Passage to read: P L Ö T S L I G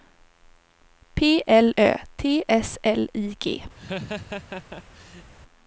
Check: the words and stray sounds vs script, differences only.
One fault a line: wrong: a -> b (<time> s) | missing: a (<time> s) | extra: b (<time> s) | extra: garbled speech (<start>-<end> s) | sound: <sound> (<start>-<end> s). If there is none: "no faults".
sound: laugh (3.8-5.3 s)